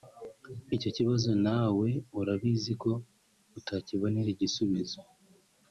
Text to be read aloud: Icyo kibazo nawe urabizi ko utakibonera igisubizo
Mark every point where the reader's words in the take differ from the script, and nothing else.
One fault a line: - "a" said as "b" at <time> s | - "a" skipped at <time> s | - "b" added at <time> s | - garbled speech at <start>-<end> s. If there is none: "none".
none